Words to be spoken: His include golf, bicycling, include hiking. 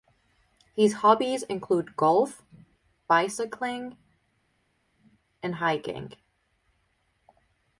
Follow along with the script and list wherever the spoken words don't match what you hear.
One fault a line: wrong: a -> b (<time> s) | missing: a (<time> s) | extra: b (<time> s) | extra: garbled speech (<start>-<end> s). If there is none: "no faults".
extra: hobbies (0.9 s)
wrong: include -> and (5.4 s)